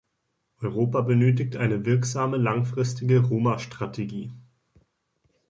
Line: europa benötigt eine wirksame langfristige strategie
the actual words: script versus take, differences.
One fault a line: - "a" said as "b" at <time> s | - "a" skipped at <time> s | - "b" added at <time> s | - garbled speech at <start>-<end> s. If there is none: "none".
- "roma" added at 3.2 s